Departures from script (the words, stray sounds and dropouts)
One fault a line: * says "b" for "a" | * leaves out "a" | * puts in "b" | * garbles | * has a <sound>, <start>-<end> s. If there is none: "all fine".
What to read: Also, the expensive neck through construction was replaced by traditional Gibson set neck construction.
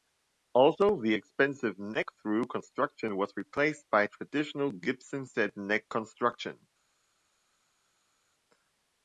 all fine